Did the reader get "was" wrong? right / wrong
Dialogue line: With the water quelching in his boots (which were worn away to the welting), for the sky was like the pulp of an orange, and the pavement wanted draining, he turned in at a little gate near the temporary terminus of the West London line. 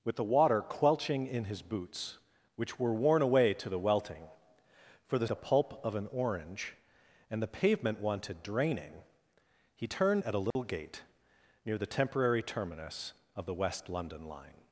wrong